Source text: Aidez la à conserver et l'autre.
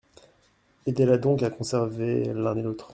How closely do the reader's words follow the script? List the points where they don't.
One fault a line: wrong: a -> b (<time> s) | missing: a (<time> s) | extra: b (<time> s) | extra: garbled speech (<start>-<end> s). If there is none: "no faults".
extra: donc (1.2 s)
extra: l'un (2.3 s)